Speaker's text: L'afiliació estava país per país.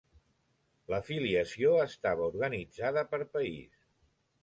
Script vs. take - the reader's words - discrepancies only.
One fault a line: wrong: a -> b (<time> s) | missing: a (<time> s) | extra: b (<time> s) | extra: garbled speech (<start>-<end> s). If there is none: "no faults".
wrong: país -> organitzada (2.3 s)